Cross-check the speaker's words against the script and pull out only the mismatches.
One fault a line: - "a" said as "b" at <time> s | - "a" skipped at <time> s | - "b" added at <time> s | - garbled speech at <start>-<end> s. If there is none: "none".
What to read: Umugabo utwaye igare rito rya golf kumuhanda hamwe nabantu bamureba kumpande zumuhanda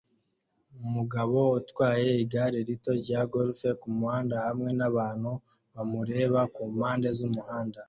none